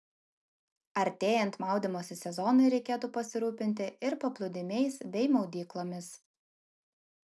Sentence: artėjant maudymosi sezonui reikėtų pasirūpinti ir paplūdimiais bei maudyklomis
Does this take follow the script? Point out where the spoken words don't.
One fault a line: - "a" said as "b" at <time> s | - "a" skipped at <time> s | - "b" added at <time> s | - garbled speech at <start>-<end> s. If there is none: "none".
none